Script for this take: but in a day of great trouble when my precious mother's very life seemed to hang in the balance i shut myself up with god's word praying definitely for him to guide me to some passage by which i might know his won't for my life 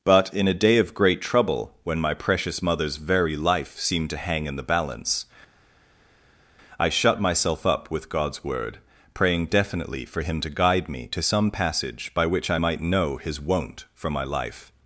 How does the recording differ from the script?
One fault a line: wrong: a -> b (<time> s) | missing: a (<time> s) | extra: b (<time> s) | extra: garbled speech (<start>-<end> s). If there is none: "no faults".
no faults